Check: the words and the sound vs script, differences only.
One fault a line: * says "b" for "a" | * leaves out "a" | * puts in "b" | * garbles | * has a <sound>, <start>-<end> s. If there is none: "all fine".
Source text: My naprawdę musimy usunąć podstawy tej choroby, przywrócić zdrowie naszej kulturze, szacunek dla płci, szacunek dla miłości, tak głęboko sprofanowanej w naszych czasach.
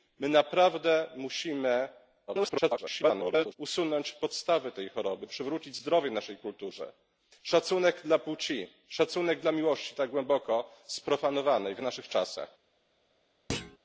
* garbles
* has a thud, 13.5-13.8 s